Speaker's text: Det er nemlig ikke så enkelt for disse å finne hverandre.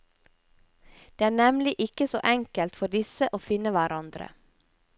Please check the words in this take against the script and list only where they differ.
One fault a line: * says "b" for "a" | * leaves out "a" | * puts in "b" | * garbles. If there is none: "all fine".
all fine